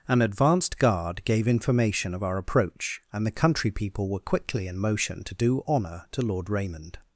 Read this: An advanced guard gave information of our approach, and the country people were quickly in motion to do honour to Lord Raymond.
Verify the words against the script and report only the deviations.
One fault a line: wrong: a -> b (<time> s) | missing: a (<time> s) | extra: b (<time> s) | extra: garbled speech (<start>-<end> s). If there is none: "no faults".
no faults